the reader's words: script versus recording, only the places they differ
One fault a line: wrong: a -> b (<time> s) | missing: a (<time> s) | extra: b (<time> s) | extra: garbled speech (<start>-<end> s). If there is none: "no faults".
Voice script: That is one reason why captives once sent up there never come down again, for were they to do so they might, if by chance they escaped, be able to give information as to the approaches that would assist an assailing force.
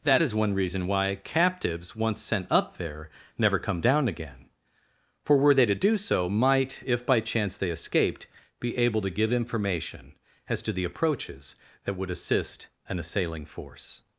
missing: they (6.3 s)